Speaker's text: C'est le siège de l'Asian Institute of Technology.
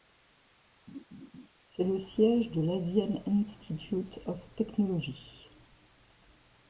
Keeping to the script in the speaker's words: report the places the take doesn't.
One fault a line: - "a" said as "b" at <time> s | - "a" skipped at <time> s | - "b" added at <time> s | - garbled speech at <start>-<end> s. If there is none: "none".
none